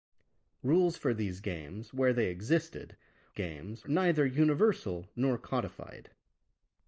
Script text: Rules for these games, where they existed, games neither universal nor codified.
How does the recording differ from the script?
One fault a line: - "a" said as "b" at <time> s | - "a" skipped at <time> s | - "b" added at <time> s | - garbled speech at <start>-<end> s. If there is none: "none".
none